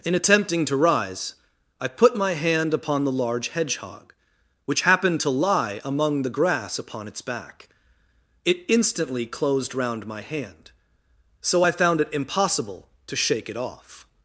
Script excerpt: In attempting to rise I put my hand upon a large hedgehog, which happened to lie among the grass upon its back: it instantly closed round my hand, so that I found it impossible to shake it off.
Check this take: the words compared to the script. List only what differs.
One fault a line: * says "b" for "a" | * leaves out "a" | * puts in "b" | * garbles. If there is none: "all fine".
* says "the" for "a"
* leaves out "that"